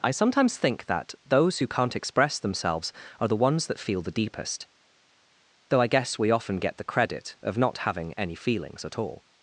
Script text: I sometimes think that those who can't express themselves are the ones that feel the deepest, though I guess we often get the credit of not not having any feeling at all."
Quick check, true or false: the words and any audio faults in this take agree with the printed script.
false